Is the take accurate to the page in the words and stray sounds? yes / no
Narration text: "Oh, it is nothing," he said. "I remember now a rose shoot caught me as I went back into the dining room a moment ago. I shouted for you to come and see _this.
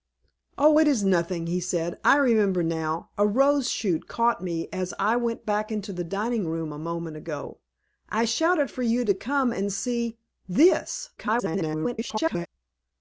no